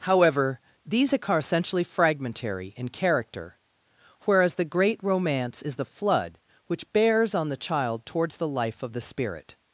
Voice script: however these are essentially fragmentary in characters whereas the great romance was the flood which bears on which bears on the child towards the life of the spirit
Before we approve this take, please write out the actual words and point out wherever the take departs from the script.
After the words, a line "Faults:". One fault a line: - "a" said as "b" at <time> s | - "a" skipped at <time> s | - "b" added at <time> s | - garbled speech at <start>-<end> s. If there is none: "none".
however these are essentially fragmentary in character whereas the great romance is the flood which bears on the child towards the life of the spirit
Faults:
- "characters" said as "character" at 2.9 s
- "was" said as "is" at 5.6 s
- "which bears on" skipped at 7.5 s